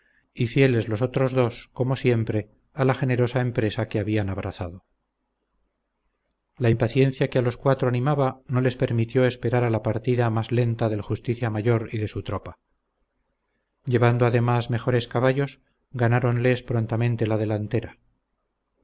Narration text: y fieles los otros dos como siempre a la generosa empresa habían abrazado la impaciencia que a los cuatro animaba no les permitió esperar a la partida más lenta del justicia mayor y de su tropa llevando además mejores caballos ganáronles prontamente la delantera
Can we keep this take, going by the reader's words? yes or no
no